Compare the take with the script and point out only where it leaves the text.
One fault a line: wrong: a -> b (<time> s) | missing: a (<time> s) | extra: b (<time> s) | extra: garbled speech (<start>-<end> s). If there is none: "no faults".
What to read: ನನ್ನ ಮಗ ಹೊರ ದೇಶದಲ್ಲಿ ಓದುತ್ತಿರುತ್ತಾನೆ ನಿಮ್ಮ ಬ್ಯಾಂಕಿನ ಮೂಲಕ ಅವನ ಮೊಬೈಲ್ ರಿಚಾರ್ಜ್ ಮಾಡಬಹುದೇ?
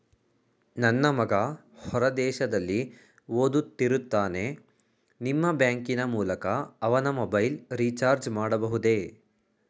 no faults